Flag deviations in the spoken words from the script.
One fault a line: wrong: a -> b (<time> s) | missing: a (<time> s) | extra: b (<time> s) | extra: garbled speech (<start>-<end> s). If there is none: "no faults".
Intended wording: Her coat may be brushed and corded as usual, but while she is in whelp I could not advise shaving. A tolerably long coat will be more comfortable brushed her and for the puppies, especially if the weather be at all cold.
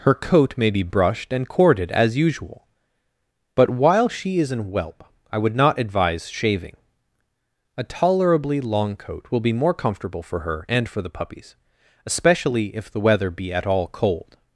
wrong: could -> would (5.4 s)
wrong: brushed -> for (10.2 s)